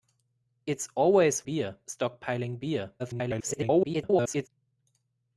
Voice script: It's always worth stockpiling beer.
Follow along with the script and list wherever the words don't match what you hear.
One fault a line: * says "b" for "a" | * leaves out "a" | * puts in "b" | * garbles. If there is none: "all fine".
* says "beer" for "worth"
* garbles